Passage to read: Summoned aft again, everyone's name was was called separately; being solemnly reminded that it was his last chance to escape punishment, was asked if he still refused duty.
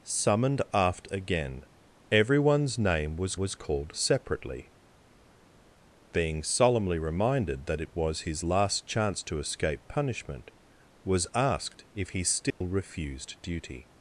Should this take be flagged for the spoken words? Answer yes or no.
no